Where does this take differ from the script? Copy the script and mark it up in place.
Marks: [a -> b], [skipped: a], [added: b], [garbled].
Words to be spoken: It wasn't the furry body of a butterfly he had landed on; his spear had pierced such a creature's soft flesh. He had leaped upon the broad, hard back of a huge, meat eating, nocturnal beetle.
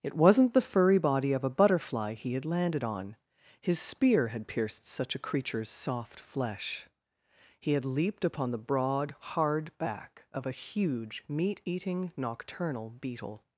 It wasn't the furry body of a butterfly he had landed on; his spear had pierced such a creature's soft flesh. He had leaped upon the broad, hard back of a huge, meat eating, nocturnal beetle.